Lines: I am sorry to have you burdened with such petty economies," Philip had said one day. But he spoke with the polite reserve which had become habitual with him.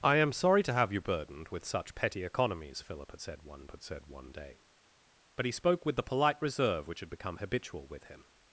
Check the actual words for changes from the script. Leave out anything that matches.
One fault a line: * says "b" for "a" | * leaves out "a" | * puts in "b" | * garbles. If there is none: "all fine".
* puts in "had said one"